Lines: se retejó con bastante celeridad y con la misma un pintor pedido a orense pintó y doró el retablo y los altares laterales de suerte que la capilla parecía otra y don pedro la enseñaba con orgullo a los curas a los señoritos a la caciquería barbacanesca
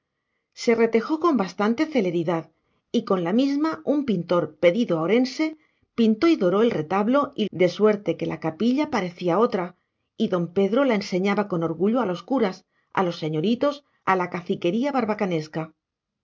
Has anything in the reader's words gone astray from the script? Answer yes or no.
yes